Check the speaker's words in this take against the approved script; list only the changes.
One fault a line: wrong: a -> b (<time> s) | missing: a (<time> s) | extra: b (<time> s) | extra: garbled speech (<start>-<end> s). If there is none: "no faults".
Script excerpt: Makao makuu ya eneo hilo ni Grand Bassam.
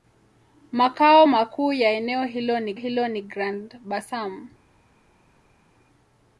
extra: hilo ni (2.7 s)